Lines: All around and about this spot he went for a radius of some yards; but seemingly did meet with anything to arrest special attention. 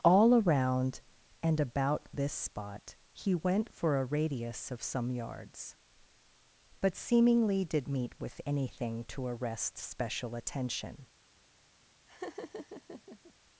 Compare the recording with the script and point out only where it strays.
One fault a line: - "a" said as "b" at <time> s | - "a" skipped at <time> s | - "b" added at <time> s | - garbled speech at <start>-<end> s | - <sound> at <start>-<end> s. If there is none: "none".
- laugh at 12.1-13.3 s